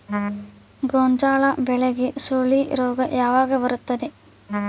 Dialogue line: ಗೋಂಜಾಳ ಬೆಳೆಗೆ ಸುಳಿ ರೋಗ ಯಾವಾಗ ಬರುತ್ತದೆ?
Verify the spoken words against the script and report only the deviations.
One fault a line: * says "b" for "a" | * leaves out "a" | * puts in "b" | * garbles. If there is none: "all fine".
all fine